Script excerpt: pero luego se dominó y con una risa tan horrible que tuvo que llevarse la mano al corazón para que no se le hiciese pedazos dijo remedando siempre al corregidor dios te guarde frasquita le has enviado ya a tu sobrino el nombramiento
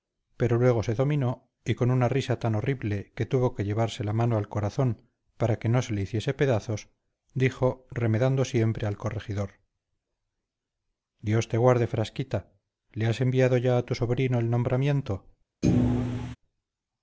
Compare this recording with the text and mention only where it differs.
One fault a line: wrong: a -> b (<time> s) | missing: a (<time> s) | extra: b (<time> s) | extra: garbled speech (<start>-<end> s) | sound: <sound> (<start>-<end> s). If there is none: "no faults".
sound: thud (15.6-16.4 s)